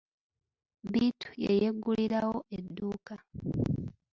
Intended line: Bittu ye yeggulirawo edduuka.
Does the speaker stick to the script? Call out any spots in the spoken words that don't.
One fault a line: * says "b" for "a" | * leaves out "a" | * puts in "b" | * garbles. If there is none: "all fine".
all fine